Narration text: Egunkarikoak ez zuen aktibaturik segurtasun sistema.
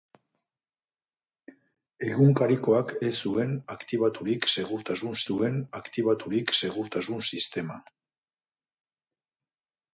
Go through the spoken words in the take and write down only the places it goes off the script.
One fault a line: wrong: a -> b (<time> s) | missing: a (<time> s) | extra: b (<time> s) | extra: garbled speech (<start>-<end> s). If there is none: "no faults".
extra: zuen aktibaturik segurtasun (5.3 s)